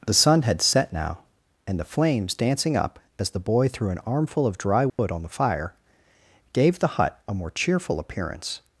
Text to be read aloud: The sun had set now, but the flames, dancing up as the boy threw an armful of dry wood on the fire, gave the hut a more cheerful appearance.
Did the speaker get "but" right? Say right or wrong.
wrong